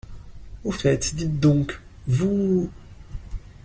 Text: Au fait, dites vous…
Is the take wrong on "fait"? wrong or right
right